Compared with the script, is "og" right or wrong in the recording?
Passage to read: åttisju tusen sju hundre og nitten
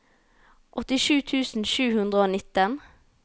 right